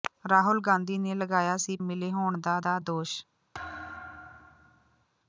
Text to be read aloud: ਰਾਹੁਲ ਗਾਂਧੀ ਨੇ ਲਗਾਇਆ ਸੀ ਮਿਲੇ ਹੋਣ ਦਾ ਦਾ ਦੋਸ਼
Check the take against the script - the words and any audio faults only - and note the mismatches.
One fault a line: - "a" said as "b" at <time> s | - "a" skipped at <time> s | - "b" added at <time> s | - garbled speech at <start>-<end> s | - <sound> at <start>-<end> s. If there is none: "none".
- thud at 3.5-5.1 s